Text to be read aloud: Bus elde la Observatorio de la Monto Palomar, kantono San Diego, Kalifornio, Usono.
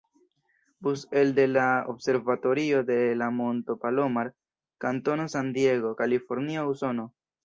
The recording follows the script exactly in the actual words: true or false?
true